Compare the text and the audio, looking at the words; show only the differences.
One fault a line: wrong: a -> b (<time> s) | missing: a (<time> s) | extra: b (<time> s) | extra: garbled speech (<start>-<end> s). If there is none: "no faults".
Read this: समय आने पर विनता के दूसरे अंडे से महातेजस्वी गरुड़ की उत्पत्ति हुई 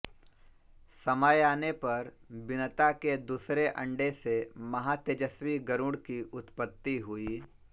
no faults